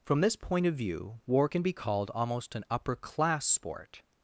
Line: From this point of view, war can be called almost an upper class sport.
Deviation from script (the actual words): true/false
false